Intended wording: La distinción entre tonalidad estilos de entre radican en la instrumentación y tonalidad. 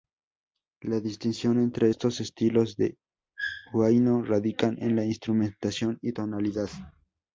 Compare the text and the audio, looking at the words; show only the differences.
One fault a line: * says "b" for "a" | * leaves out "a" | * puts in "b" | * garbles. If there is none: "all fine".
* says "estos" for "tonalidad"
* says "huayno" for "entre"